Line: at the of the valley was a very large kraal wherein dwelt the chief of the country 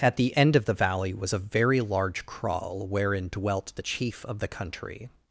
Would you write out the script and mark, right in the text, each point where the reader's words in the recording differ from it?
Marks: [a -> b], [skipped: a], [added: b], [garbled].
at the [added: end] of the valley was a very large kraal wherein dwelt the chief of the country